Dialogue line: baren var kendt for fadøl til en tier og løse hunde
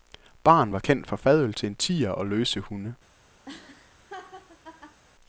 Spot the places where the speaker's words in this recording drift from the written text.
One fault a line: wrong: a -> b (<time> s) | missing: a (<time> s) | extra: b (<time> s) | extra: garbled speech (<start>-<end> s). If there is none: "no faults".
no faults